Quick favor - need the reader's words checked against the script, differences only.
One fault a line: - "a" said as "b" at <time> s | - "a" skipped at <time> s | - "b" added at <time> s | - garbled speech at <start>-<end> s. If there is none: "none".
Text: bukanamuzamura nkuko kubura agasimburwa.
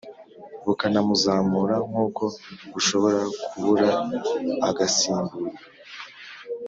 - "bushobora" added at 2.7 s